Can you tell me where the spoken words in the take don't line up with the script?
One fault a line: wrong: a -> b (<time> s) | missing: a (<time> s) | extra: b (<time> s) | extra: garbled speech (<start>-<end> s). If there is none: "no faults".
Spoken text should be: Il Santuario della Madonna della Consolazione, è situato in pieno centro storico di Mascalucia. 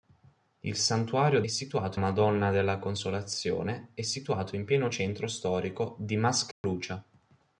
wrong: della -> situato (1.5 s)